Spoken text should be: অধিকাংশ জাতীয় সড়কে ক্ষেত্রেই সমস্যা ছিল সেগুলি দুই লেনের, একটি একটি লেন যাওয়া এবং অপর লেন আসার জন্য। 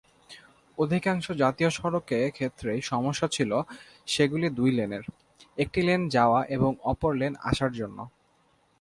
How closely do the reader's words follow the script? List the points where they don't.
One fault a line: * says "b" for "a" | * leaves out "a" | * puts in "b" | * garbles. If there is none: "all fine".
* leaves out "একটি"